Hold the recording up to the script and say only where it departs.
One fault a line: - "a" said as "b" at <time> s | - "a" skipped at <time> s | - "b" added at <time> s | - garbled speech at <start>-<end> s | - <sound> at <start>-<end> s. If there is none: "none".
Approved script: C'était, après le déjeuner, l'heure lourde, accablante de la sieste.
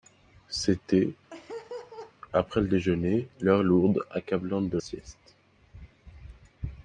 - laugh at 1.3-2.1 s
- "la" skipped at 4.8 s